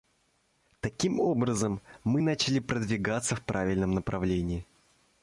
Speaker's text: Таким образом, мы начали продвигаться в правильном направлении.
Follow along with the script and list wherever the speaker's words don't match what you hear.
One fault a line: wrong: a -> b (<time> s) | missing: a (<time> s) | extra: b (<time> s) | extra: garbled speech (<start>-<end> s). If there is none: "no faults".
no faults